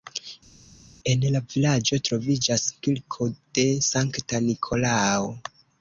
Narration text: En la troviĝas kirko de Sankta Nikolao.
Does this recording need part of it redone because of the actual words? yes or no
yes